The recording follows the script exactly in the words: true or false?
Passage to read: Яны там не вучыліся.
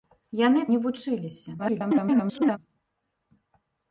false